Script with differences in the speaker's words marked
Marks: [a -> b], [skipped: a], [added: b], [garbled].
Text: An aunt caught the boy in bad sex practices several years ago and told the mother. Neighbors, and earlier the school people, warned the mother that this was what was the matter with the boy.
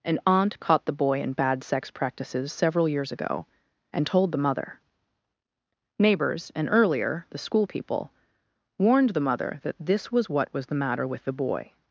An aunt caught the boy in bad sex practices several years ago and told the mother. Neighbors, and earlier the school people, warned the mother that this was what was the matter with the boy.